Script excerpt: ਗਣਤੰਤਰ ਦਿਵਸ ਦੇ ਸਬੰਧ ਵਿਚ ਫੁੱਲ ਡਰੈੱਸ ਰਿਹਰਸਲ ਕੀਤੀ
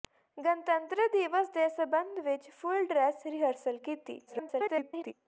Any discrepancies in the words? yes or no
yes